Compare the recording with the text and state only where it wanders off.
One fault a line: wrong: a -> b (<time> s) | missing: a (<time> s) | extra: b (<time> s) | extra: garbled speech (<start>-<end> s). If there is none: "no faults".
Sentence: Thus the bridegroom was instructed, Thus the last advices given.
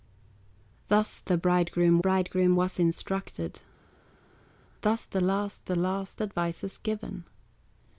extra: bridegroom (2.0 s)
extra: the last (5.6 s)